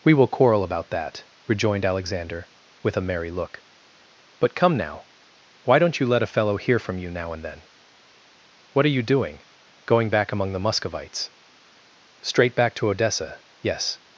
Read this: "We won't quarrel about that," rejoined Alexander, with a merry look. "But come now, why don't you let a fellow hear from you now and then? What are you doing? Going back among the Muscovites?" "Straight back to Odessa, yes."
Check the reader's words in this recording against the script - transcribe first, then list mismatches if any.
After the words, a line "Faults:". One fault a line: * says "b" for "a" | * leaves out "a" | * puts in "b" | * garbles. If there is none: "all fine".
"We will quarrel about that," rejoined Alexander, with a merry look. "But come now, why don't you let a fellow hear from you now and then? What are you doing? Going back among the Muscovites?" "Straight back to Odessa, yes."
Faults:
* says "will" for "won't"